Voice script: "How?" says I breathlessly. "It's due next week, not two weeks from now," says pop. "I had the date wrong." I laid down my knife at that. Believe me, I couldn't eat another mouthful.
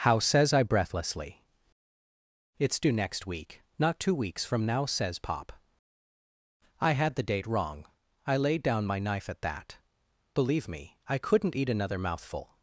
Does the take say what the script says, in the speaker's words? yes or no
yes